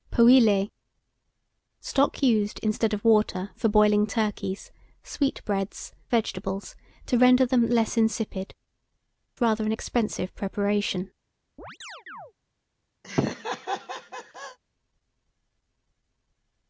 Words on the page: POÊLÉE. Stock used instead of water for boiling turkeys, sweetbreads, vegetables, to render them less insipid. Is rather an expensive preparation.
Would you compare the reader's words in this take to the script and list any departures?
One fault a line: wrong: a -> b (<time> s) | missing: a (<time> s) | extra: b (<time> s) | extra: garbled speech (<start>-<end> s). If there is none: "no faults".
no faults